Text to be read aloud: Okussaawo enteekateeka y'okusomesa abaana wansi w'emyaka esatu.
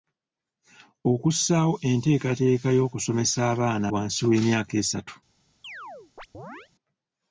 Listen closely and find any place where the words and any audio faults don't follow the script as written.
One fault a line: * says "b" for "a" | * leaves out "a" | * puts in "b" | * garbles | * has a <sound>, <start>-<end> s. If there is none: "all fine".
* has a chirp, 5.6-6.7 s